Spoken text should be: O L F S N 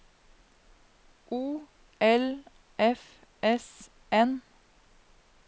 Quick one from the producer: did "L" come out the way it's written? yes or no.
yes